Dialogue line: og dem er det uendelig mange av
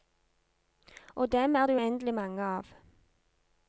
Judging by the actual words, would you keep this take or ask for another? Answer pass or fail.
pass